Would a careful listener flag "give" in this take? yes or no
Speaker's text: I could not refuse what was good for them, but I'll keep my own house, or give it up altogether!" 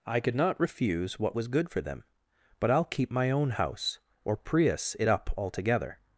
yes